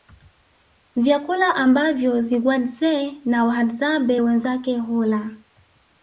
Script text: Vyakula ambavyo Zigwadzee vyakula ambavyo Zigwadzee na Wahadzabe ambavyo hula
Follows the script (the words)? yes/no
no